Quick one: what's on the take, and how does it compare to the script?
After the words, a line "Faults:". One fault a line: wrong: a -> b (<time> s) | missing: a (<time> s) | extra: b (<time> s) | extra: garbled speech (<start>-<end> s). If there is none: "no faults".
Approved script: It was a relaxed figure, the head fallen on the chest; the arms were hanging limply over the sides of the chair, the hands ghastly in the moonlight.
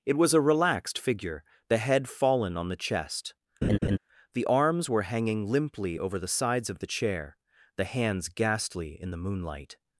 It was a relaxed figure, the head fallen on the chest; the arms were hanging limply over the sides of the chair, the hands ghastly in the moonlight.
Faults:
no faults